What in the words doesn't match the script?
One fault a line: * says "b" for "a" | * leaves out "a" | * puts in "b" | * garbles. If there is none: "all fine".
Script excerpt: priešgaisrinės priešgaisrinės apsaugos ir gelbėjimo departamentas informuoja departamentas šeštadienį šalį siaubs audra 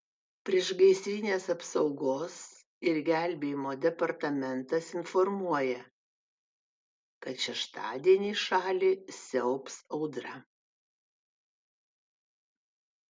* leaves out "priešgaisrinės"
* says "kad" for "departamentas"